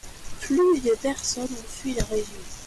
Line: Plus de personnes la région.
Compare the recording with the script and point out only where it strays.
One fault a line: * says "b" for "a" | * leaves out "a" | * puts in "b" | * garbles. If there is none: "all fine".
* puts in "ont fui"